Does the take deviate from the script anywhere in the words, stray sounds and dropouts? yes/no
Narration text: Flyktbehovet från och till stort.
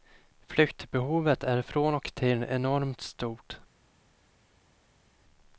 yes